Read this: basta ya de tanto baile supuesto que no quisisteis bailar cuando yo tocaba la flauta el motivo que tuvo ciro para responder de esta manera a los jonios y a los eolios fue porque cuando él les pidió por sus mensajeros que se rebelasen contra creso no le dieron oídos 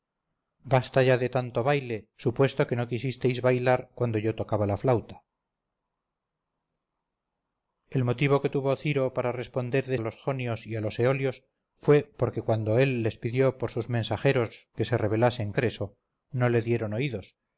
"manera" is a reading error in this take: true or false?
true